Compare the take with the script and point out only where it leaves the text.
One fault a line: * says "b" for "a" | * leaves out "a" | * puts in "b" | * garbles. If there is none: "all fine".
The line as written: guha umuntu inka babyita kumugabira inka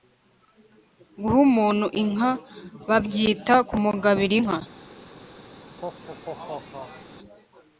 all fine